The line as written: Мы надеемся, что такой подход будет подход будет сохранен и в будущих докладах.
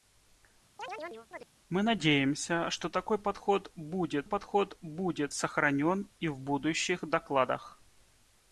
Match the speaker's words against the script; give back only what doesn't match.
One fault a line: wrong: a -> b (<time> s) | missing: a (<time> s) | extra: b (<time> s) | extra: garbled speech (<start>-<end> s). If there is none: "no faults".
no faults